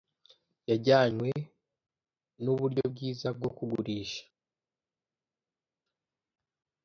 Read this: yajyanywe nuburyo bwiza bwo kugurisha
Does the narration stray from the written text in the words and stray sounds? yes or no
no